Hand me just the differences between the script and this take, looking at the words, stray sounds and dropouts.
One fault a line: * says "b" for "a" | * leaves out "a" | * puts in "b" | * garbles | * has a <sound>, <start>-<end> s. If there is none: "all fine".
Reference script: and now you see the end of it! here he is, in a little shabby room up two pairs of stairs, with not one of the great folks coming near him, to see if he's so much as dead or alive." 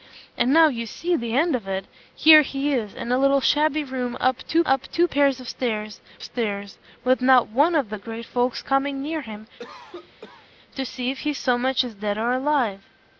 * puts in "up two"
* puts in "stairs"
* has a cough, 9.6-10.5 s